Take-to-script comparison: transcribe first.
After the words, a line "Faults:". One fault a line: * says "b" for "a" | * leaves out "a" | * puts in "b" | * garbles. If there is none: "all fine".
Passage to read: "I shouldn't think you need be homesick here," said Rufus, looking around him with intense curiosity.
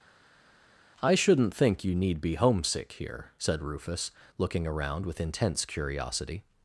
"I shouldn't think you need be homesick here," said Rufus, looking around with intense curiosity.
Faults:
* leaves out "him"